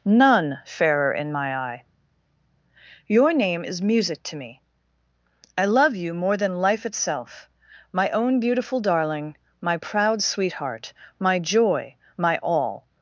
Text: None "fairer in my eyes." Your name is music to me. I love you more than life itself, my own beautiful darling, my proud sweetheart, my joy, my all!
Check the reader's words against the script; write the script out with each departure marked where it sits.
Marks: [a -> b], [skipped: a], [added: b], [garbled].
None "fairer in my [eyes." -> eye] Your name is music to me. I love you more than life itself, my own beautiful darling, my proud sweetheart, my joy, my all!